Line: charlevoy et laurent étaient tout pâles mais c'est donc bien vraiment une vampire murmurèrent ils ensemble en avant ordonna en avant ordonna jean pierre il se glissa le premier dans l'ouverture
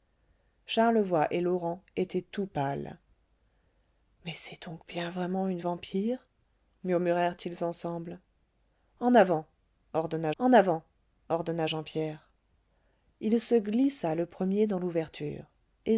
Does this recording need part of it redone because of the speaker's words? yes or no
no